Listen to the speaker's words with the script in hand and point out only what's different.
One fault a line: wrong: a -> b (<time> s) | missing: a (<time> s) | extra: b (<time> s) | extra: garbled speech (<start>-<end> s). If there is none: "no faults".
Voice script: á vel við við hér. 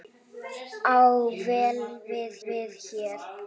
no faults